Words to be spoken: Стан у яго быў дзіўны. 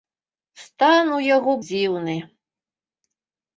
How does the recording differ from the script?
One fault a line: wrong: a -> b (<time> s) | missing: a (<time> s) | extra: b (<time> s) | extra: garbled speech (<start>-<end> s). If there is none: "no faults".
missing: быў (1.5 s)